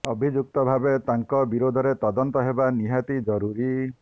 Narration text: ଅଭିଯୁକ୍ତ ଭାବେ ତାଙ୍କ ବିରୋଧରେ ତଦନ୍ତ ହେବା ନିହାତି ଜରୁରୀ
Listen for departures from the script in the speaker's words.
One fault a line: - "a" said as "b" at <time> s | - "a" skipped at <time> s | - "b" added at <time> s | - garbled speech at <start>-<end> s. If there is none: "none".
none